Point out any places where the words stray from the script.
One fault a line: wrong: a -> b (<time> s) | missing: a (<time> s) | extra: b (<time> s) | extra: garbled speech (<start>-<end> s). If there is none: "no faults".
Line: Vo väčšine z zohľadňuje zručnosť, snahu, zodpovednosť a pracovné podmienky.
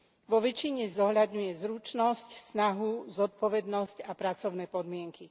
no faults